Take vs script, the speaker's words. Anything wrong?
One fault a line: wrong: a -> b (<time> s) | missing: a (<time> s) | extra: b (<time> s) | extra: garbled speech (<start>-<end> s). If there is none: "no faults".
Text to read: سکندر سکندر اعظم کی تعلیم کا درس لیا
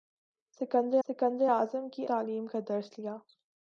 no faults